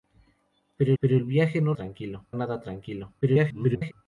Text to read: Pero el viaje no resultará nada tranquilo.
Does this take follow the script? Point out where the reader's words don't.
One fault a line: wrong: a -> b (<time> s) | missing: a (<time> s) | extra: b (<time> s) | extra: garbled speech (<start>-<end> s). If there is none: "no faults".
extra: pero (1.0 s)
wrong: resultará -> tranquilo (1.7 s)
extra: garbled speech (3.2-3.9 s)